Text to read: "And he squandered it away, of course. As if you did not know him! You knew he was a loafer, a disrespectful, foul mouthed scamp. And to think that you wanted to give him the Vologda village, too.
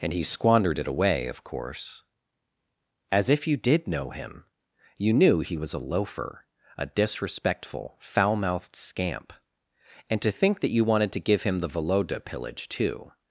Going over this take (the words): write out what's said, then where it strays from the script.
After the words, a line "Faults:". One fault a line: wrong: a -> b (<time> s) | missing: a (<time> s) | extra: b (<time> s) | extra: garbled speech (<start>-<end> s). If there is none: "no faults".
"And he squandered it away, of course. As if you did know him! You knew he was a loafer, a disrespectful, foul mouthed scamp. And to think that you wanted to give him the Vologda pillage, too.
Faults:
missing: not (3.9 s)
wrong: village -> pillage (12.2 s)